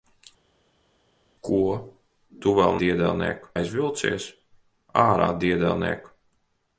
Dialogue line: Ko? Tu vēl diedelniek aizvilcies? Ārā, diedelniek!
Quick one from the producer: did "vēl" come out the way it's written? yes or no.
yes